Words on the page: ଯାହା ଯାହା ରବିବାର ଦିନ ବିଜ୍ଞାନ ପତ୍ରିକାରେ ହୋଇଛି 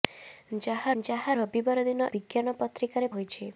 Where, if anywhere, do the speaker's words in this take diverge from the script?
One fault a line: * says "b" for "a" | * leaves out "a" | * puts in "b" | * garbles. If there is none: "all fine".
all fine